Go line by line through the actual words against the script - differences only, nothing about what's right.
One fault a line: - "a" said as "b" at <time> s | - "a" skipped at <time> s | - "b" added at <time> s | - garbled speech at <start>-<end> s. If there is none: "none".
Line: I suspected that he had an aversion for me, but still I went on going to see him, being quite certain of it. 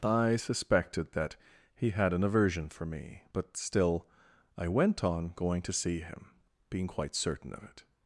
none